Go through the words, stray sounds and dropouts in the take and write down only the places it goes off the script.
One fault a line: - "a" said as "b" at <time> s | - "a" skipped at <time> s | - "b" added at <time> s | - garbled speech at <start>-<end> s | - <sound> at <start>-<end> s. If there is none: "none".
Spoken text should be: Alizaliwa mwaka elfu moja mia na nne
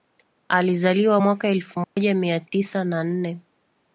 - dropout at 1.8-2.0 s
- "tisa" added at 2.4 s